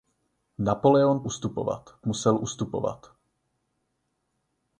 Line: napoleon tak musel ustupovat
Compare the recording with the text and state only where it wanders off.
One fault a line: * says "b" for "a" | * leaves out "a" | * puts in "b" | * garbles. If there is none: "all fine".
* says "ustupovat" for "tak"